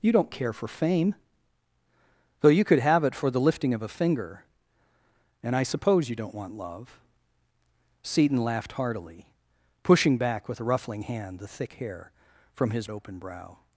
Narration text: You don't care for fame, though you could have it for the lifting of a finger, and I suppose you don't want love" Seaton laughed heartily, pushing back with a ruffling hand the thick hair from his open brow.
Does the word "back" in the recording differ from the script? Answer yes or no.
no